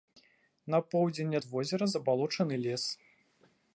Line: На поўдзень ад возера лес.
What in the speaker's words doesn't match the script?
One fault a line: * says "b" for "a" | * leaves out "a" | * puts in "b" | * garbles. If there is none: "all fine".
* puts in "забалочаны"